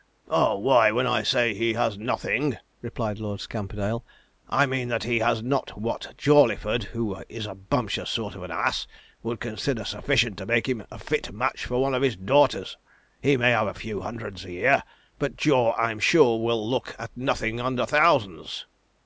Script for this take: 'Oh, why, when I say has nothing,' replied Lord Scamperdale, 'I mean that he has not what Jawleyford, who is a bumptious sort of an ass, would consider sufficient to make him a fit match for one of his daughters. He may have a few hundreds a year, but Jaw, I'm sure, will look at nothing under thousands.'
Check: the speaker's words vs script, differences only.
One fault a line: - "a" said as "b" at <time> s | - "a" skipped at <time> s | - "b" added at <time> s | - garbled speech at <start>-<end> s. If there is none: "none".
- "he" added at 1.5 s